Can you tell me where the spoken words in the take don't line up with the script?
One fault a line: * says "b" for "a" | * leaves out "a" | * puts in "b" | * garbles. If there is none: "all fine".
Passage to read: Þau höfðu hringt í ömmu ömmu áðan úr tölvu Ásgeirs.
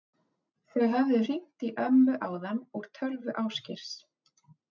* leaves out "ömmu"